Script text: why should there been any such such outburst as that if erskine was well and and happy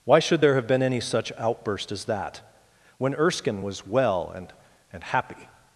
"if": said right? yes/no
no